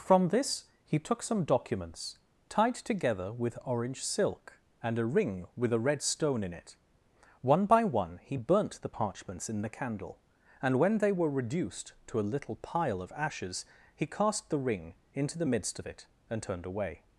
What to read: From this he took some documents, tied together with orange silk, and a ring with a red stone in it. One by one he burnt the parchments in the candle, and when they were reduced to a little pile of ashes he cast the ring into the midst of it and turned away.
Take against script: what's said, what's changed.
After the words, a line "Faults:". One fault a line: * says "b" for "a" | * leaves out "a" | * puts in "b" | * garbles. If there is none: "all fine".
From this he took some documents, tied together with orange silk, and a ring with a red stone in it. One by one he burnt the parchments in the candle, and when they were reduced to a little pile of ashes he cast the ring into the midst of it and turned away.
Faults:
all fine